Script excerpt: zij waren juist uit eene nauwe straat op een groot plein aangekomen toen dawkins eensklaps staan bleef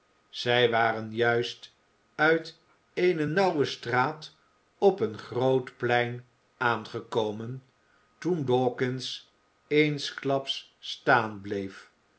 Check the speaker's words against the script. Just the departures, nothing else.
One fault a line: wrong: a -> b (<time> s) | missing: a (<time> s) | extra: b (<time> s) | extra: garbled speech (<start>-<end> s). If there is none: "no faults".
no faults